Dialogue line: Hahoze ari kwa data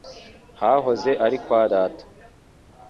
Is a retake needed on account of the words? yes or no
no